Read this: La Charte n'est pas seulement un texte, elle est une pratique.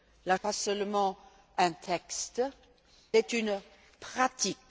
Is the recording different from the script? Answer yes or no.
yes